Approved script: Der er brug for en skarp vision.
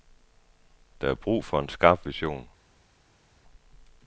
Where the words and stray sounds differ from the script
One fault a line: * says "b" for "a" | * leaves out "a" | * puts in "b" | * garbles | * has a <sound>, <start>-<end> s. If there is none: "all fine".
all fine